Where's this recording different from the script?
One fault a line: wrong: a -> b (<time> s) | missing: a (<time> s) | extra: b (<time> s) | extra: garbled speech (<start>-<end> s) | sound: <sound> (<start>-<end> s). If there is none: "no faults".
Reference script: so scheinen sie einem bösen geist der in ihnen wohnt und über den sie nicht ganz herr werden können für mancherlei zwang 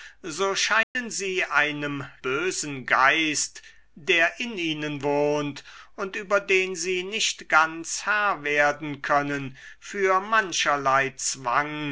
sound: dropout (0.8-1.0 s)